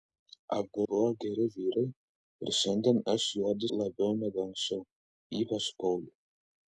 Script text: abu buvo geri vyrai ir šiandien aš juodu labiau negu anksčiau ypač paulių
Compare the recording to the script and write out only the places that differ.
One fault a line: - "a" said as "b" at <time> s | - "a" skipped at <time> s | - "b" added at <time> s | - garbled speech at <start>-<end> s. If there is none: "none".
none